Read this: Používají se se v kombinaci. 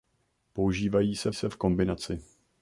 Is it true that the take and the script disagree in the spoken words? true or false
false